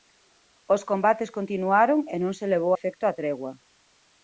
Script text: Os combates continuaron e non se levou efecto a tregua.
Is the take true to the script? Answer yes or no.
yes